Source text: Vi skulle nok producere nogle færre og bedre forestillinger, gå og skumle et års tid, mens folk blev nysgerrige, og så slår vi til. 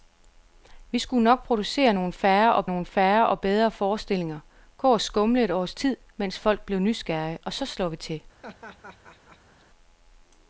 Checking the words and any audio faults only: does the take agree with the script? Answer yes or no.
no